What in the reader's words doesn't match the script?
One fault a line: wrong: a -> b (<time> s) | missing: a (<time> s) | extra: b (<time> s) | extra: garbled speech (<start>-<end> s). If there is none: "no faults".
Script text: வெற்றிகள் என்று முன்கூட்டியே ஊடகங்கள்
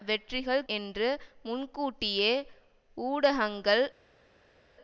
no faults